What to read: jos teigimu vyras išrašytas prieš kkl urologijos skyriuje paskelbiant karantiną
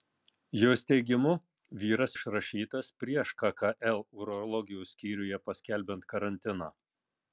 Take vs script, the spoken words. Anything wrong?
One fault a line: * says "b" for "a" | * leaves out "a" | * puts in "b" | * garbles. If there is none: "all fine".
all fine